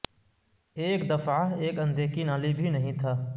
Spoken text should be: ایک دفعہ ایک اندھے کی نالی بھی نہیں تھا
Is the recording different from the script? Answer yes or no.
no